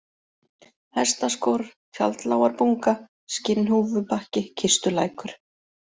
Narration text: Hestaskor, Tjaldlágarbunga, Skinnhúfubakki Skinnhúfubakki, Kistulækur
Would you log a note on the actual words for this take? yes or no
yes